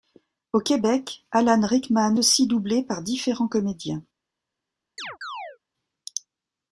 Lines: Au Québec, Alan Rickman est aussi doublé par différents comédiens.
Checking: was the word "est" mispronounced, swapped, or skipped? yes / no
yes